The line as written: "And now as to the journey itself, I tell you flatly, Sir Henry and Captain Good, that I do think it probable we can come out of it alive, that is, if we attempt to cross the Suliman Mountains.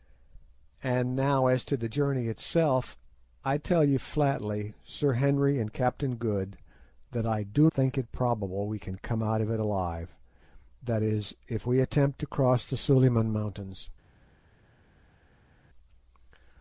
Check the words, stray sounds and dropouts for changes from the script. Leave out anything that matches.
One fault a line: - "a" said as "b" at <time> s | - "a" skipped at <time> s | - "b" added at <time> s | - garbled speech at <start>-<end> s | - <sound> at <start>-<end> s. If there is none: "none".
none